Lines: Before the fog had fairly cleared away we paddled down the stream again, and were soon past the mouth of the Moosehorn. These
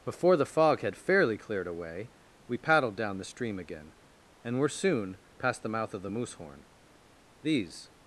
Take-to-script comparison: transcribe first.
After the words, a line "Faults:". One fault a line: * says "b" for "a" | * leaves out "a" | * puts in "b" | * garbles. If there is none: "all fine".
Before the fog had fairly cleared away we paddled down the stream again, and were soon past the mouth of the Moosehorn. These
Faults:
all fine